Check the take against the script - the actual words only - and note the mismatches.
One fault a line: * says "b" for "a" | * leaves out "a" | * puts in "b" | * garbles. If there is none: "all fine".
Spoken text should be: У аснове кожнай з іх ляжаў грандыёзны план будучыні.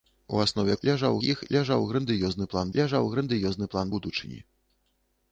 * says "ляжаў" for "кожнай"
* puts in "ляжаў грандыёзны план"